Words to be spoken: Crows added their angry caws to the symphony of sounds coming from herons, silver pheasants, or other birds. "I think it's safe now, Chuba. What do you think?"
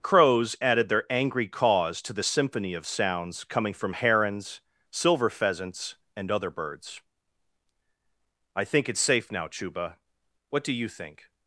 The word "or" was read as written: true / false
false